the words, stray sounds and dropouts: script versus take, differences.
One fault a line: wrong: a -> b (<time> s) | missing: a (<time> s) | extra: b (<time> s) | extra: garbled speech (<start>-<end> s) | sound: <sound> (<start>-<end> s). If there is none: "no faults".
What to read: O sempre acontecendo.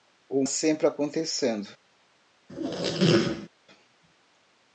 sound: squeak (2.5-3.5 s)